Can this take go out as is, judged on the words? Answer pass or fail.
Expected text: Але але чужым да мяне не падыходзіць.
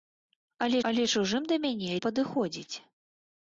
pass